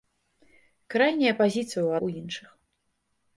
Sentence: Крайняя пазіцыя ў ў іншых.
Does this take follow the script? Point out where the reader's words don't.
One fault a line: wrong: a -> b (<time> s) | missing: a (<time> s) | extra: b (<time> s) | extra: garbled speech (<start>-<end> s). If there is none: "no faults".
no faults